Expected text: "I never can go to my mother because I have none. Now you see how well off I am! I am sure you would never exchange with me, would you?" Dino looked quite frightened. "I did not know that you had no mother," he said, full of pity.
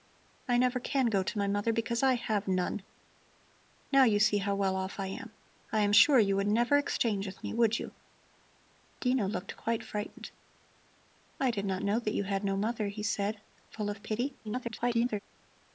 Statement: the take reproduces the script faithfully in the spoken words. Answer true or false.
false